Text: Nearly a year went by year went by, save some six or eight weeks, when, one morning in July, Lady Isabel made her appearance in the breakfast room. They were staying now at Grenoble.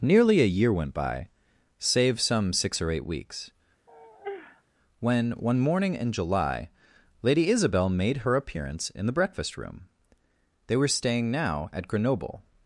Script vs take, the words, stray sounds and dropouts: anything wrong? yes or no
yes